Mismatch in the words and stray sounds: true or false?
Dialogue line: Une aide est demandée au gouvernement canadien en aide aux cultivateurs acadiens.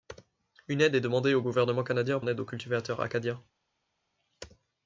false